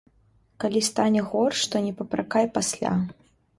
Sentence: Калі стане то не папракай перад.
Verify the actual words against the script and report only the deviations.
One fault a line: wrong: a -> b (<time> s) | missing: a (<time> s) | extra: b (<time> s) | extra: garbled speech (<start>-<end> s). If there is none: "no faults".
extra: горш (1.3 s)
wrong: перад -> пасля (2.6 s)